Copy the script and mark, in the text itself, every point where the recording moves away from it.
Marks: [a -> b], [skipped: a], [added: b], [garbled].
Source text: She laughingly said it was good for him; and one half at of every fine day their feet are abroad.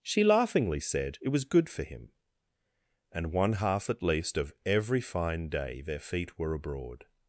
She laughingly said it was good for him; and one half at [added: least] of every fine day their feet [are -> were] abroad.